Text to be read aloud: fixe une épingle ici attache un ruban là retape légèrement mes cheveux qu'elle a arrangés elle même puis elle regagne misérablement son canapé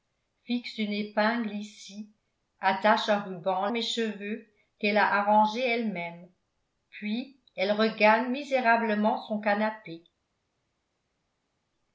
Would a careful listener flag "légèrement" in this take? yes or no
yes